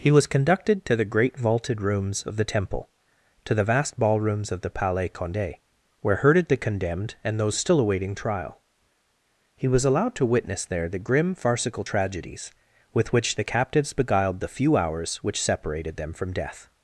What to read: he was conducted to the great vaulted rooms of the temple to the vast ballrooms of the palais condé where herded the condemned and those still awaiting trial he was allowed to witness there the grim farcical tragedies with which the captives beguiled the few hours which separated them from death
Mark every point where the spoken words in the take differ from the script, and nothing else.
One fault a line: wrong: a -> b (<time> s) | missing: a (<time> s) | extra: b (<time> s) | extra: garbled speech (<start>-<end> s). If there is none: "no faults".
no faults